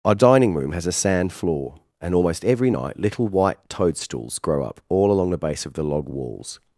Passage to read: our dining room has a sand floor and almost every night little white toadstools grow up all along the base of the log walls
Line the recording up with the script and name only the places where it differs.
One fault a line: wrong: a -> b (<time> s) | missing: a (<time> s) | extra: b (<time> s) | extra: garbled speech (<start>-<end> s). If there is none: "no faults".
no faults